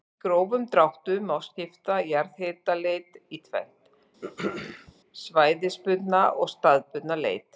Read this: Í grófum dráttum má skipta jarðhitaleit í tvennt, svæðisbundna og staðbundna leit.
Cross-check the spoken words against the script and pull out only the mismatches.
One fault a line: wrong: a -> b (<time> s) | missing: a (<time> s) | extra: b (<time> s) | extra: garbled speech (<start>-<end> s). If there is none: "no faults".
no faults